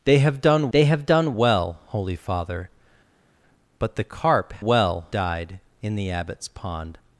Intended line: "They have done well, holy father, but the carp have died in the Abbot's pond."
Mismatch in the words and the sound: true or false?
true